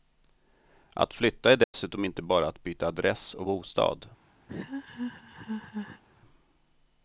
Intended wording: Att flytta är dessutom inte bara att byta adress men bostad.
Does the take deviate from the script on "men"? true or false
true